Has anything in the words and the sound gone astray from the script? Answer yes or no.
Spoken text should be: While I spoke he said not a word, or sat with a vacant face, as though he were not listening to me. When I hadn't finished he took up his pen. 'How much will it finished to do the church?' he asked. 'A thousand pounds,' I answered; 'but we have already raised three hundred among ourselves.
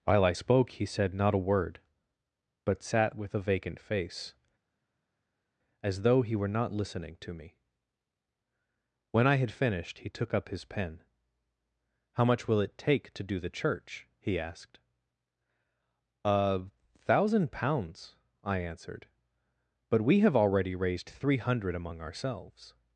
yes